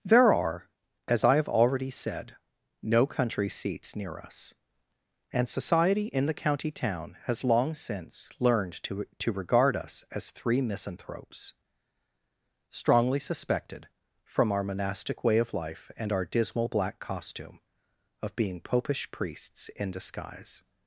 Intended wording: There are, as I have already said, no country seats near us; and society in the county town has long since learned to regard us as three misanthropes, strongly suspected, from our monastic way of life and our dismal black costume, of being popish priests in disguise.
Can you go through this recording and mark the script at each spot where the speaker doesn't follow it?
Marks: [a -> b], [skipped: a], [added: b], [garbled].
There are, as I have already said, no country seats near us; and society in the county town has long since learned to [added: to] regard us as three misanthropes, strongly suspected, from our monastic way of life and our dismal black costume, of being popish priests in disguise.